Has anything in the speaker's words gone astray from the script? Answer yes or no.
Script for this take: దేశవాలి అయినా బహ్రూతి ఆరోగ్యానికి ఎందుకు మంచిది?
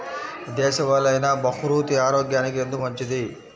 no